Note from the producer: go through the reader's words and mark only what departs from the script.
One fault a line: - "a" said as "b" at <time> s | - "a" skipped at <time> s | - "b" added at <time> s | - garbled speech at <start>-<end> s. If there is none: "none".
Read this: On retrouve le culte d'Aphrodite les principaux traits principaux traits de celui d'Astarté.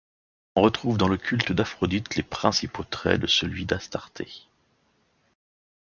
- "dans" added at 1.0 s
- "principaux traits" skipped at 3.2 s